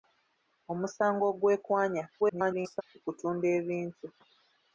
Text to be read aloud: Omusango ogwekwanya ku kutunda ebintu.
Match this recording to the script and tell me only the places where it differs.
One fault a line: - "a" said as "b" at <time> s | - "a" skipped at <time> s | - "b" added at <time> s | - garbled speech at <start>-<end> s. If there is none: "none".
- garbled speech at 2.2-2.8 s